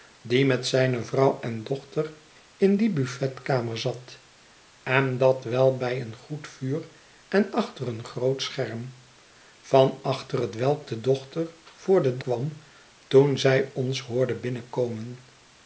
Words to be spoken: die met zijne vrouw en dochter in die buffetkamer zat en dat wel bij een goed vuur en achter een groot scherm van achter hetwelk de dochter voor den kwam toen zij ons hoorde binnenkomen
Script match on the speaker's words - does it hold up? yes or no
yes